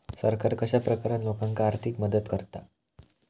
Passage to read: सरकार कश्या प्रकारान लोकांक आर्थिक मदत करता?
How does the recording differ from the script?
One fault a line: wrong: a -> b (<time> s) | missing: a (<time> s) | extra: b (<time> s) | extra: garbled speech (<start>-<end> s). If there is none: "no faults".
no faults